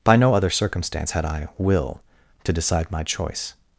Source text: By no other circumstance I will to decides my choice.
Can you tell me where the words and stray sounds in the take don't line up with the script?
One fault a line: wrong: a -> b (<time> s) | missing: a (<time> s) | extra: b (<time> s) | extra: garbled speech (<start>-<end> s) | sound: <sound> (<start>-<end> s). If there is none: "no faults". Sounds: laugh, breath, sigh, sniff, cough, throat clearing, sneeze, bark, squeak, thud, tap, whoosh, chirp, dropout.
extra: had (1.1 s)
wrong: decides -> decide (2.5 s)